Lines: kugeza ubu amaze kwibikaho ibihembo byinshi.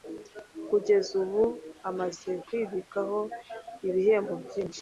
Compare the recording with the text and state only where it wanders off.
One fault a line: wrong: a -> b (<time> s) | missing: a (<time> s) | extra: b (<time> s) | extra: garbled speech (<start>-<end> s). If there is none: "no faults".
no faults